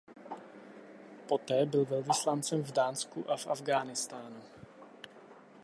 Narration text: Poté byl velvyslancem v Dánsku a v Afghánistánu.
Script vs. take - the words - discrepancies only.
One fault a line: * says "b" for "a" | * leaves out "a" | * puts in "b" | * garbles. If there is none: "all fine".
all fine